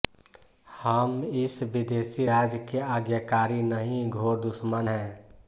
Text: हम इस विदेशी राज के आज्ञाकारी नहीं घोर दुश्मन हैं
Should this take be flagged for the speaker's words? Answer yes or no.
no